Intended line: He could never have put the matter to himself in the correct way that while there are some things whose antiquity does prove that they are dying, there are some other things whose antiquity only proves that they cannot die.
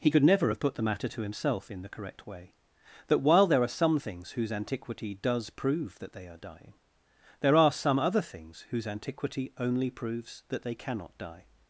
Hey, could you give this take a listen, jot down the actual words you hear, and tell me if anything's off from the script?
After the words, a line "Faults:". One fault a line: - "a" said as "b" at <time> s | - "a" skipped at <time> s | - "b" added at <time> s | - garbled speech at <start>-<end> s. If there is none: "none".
He could never have put the matter to himself in the correct way that while there are some things whose antiquity does prove that they are dying, there are some other things whose antiquity only proves that they cannot die.
Faults:
none